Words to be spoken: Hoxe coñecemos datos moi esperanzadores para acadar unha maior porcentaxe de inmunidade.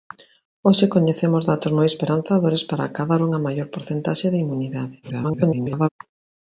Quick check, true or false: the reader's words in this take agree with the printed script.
false